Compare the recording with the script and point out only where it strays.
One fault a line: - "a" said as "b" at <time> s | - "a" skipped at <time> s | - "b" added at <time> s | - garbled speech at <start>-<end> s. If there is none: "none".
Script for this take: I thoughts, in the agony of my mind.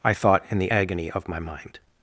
- "thoughts" said as "thought" at 0.1 s